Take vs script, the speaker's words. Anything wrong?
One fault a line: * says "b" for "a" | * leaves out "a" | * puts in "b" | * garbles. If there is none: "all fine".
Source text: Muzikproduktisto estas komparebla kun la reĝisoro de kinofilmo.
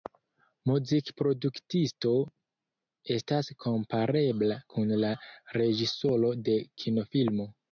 all fine